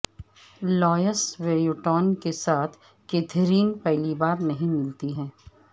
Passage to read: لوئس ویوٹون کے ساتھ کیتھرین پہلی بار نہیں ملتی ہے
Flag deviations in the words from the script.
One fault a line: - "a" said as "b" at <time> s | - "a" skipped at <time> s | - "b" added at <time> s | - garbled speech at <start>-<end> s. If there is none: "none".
none